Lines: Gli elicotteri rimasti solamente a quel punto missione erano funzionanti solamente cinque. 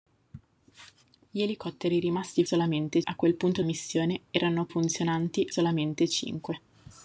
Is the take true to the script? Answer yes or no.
yes